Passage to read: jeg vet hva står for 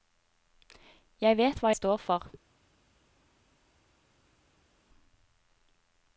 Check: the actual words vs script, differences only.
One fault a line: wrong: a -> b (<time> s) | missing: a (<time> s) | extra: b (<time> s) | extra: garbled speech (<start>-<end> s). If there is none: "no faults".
no faults